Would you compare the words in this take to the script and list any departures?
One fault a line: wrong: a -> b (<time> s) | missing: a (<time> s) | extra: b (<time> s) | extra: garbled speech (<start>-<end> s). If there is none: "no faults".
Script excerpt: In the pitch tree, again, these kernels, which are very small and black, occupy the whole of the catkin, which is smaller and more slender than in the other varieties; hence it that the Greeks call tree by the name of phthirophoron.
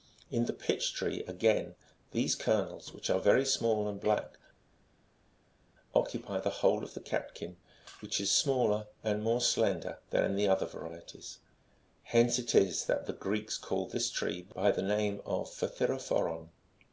extra: is (12.5 s)
extra: this (13.9 s)